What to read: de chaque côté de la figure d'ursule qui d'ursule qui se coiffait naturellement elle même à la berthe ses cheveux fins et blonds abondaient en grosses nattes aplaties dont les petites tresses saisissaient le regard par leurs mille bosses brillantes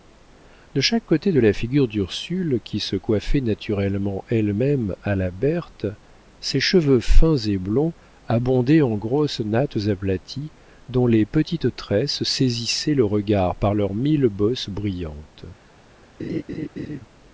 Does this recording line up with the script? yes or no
no